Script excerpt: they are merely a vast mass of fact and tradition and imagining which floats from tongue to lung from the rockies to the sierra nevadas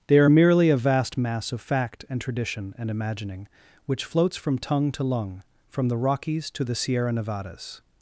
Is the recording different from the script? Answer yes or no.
no